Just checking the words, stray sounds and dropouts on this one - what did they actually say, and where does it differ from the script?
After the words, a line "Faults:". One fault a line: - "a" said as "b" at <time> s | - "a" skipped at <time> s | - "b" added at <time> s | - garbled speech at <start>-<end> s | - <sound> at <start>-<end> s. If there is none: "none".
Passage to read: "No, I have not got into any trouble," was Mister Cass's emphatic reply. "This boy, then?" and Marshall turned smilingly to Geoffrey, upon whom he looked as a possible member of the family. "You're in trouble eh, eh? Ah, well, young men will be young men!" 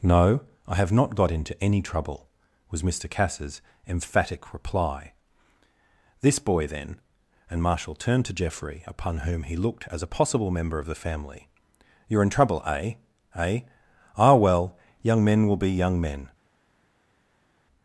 "No, I have not got into any trouble," was Mister Cass's emphatic reply. "This boy, then?" and Marshall turned to Geoffrey, upon whom he looked as a possible member of the family. "You're in trouble eh, eh? Ah, well, young men will be young men!"
Faults:
- "smilingly" skipped at 8.2 s